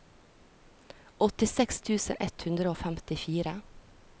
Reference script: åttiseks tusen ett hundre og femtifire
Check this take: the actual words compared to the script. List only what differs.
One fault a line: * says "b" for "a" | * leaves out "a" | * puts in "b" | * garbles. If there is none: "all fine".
all fine